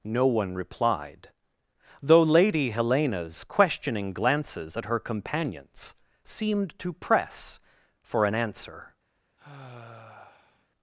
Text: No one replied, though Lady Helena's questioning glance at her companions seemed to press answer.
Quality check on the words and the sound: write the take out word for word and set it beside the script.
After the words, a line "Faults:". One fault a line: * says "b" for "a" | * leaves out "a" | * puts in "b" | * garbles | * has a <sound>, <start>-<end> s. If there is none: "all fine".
No one replied, though Lady Helena's questioning glances at her companions seemed to press for an answer.
Faults:
* says "glances" for "glance"
* puts in "for an"
* has a sigh, 9.4-10.7 s